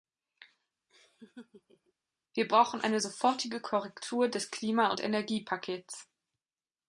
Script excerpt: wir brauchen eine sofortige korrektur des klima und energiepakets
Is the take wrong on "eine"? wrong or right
right